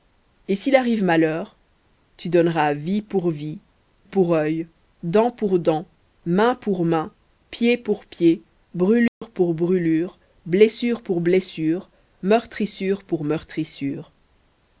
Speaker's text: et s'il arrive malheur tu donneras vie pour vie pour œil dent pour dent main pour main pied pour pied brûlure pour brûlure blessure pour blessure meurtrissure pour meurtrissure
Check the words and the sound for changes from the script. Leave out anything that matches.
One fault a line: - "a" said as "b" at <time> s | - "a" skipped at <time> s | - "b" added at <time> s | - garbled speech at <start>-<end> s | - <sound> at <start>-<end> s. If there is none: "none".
- dropout at 9.1-9.2 s